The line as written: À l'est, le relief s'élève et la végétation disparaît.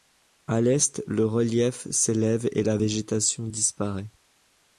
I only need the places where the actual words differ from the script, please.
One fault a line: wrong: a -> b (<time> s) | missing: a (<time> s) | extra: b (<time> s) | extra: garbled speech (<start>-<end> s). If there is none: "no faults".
no faults